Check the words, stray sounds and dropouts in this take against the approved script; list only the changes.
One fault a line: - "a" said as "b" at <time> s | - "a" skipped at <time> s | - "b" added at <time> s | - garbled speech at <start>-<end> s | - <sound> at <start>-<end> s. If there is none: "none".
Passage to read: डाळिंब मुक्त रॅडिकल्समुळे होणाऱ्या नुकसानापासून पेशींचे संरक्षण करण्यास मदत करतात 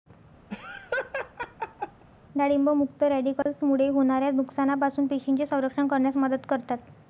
- laugh at 0.5-2.0 s
- dropout at 3.4-3.5 s